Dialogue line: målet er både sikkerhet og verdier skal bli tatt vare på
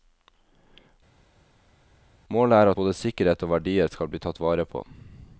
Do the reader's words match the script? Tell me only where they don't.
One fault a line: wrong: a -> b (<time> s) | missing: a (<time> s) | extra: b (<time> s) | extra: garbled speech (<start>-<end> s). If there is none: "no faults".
no faults